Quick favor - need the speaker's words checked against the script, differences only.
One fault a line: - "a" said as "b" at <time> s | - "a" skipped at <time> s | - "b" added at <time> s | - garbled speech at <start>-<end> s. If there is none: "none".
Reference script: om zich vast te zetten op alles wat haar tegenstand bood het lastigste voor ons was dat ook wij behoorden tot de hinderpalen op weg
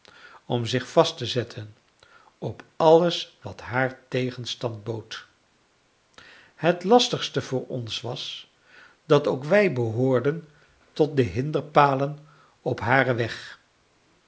- "haren" added at 12.8 s